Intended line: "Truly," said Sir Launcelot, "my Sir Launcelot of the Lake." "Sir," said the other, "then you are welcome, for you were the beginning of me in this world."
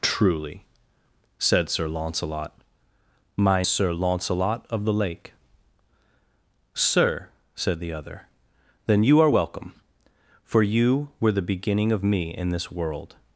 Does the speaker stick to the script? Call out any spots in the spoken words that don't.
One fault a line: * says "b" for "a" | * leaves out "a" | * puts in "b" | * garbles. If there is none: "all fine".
all fine